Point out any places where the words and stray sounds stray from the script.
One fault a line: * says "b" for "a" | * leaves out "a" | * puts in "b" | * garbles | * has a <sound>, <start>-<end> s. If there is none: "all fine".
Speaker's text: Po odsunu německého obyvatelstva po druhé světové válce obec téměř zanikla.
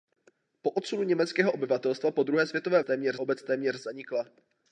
* says "téměř" for "válce"